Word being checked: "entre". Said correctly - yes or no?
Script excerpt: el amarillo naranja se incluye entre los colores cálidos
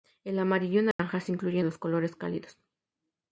no